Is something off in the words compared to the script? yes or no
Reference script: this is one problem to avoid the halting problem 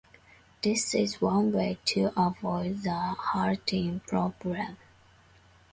yes